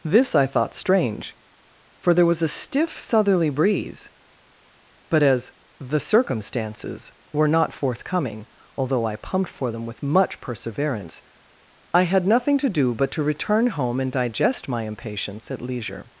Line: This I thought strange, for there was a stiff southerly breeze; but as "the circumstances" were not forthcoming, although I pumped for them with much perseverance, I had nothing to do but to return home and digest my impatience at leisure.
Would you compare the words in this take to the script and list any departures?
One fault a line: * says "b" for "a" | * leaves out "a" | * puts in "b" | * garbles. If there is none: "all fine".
all fine